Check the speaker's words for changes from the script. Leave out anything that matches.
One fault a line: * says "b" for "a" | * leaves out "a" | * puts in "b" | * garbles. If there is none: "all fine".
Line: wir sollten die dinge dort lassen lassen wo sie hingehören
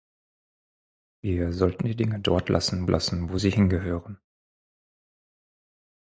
all fine